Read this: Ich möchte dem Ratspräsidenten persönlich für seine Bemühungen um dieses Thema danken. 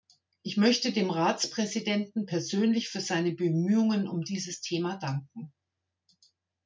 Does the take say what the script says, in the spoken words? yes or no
yes